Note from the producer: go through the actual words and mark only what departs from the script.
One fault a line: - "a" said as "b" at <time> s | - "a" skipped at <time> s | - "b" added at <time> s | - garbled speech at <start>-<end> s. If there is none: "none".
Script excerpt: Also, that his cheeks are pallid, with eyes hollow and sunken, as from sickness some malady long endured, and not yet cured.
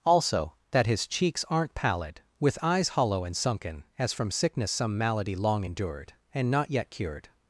- "are" said as "aren't" at 1.5 s